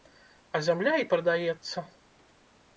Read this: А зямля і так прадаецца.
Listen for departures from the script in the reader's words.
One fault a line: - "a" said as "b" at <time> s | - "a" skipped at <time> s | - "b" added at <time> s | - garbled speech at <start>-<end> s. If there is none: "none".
- "так" skipped at 1.1 s